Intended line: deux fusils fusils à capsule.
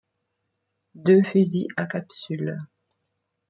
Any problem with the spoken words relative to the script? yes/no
yes